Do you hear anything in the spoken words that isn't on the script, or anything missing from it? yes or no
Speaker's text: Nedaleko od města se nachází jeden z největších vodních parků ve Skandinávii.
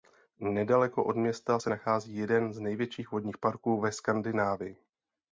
no